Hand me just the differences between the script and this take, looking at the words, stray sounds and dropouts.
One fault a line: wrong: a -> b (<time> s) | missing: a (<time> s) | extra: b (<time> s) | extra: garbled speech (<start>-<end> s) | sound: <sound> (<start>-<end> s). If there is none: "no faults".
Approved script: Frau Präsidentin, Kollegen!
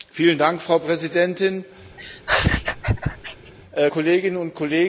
sound: laugh (2.0-3.5 s)
extra: Kolleginnen und (3.9 s)